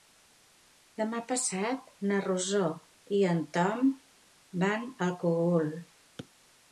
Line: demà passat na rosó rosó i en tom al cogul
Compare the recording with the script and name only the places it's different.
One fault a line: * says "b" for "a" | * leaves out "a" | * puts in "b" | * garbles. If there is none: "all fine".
* leaves out "rosó"
* puts in "van"